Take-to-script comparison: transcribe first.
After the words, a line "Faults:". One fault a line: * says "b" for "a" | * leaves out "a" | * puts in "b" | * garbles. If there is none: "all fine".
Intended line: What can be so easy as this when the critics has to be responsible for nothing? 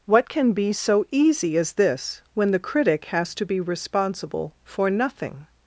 What can be so easy as this when the critic has to be responsible for nothing?
Faults:
* says "critic" for "critics"